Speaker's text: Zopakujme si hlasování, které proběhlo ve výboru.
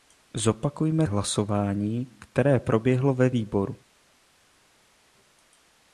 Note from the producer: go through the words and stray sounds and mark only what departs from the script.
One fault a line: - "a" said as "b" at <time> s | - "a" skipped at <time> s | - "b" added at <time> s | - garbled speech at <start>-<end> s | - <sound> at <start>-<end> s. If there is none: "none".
- "si" skipped at 1.1 s